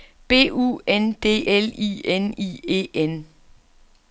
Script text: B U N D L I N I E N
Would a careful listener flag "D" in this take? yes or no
no